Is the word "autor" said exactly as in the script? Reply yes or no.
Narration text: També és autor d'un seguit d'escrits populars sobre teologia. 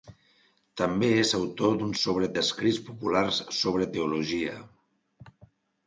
yes